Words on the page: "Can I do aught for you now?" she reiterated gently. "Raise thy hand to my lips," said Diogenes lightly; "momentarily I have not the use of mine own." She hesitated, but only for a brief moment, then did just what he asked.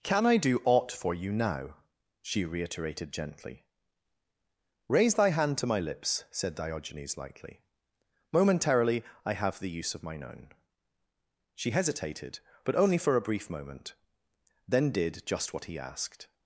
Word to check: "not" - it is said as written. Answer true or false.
false